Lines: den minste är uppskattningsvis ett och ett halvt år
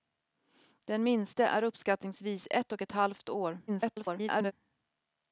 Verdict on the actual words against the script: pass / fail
fail